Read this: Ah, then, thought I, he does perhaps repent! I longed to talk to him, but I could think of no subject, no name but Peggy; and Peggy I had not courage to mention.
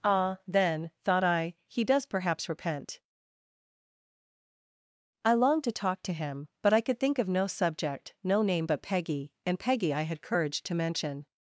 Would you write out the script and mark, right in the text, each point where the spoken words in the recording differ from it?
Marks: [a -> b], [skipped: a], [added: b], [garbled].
Ah, then, thought I, he does perhaps repent! I longed to talk to him, but I could think of no subject, no name but Peggy; and Peggy I had [skipped: not] courage to mention.